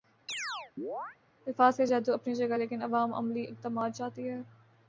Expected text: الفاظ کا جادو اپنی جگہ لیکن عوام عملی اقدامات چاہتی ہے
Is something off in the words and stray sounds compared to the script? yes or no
yes